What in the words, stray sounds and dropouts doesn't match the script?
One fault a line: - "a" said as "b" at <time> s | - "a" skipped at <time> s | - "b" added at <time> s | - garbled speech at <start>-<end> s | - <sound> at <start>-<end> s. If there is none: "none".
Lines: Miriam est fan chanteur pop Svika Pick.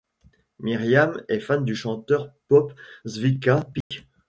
- "du" added at 1.6 s
- dropout at 3.8-3.9 s